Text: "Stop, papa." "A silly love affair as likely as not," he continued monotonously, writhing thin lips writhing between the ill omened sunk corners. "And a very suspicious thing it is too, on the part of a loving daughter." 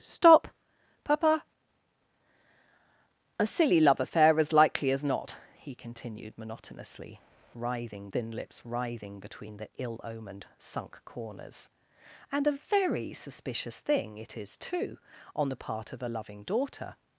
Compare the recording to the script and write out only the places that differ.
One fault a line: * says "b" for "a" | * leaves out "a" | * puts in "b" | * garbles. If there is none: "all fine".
all fine